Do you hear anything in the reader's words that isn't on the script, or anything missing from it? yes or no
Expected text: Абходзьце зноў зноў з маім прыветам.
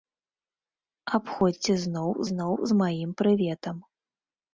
no